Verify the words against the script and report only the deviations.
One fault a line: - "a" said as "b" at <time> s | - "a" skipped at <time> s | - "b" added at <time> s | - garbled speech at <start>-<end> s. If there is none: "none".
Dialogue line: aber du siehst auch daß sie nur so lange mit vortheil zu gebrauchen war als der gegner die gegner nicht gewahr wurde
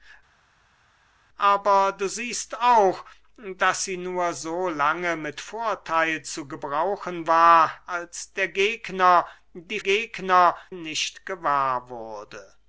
none